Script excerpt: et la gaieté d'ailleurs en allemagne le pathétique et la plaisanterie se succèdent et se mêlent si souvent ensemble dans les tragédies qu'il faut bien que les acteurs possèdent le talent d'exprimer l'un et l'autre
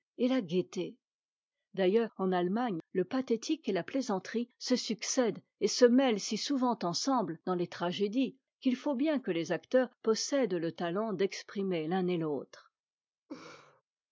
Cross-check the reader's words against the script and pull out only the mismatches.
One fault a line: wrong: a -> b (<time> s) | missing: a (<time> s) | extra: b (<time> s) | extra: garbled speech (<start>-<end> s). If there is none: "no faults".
no faults